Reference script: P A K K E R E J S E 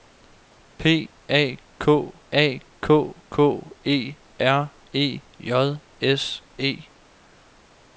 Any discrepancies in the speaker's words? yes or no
yes